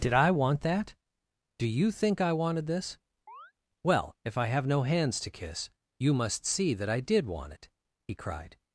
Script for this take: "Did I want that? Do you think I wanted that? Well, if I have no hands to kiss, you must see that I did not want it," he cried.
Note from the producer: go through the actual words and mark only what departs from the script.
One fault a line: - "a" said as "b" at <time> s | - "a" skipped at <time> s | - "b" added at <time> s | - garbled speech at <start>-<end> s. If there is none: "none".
- "that" said as "this" at 2.6 s
- "not" skipped at 7.3 s